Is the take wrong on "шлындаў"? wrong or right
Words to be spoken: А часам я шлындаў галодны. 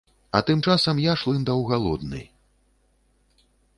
right